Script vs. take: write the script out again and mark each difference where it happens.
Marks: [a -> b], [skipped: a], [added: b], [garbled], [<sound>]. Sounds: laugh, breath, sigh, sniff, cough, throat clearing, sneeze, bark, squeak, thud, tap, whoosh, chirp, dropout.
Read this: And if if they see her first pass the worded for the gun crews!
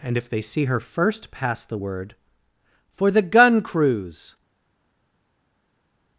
And if [skipped: if] they see her first pass the [worded -> word] for the gun crews!